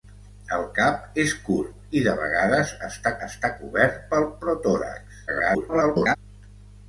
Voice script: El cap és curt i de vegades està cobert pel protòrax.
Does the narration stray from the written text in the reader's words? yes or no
yes